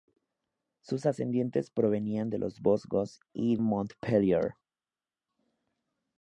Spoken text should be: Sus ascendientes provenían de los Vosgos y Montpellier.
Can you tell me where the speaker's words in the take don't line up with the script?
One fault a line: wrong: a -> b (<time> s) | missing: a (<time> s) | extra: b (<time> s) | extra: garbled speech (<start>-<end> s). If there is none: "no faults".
no faults